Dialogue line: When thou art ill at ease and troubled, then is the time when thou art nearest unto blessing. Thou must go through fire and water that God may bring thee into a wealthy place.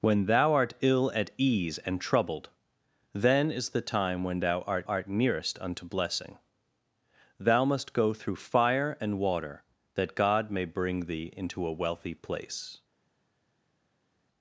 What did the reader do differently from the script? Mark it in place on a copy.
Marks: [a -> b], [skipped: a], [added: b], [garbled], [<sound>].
When thou art ill at ease and troubled, then is the time when thou art [added: art] nearest unto blessing. Thou must go through fire and water that God may bring thee into a wealthy place.